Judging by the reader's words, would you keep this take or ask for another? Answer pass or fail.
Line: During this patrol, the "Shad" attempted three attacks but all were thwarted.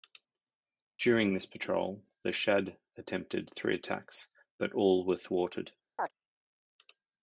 pass